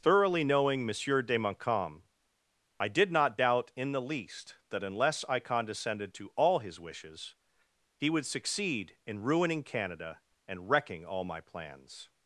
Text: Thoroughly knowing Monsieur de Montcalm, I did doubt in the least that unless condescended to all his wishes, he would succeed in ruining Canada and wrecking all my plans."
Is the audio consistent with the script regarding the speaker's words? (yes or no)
no